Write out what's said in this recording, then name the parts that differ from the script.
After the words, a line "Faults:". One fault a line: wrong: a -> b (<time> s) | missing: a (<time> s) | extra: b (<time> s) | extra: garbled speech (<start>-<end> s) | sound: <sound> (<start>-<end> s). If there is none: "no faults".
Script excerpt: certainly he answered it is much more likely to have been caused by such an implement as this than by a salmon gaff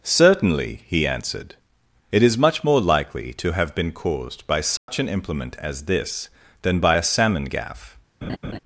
certainly he answered it is much more likely to have been caused by such an implement as this than by a salmon gaff
Faults:
sound: dropout (4.8-4.9 s)
sound: laugh (8.2-8.6 s)